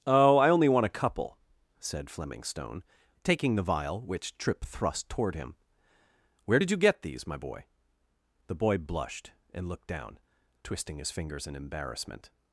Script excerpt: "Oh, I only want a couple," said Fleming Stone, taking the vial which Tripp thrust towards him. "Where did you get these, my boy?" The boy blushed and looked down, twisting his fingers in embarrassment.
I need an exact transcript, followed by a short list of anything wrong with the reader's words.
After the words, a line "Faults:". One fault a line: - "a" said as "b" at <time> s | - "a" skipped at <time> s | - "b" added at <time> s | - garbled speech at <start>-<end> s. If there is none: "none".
"Oh, I only want a couple," said Fleming Stone, taking the vial which Tripp thrust toward him. "Where did you get these, my boy?" The boy blushed and looked down, twisting his fingers in embarrassment.
Faults:
- "towards" said as "toward" at 5.1 s